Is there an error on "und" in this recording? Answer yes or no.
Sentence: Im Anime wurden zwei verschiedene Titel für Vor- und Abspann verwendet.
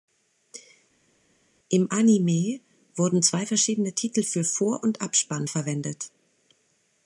no